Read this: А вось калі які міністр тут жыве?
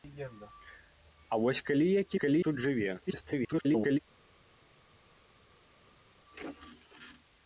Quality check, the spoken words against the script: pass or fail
fail